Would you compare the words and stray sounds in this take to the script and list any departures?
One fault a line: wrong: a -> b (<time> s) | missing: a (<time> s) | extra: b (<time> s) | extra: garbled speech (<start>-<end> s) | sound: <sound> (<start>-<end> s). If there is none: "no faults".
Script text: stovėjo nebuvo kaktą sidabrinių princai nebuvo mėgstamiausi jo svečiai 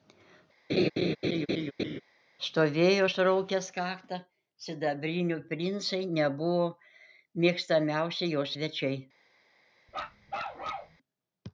sound: laugh (0.7-2.0 s)
wrong: nebuvo -> suraukęs (3.1 s)
sound: bark (9.9-11.0 s)